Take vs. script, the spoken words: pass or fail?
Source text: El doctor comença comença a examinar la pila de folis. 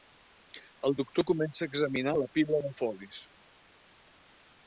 fail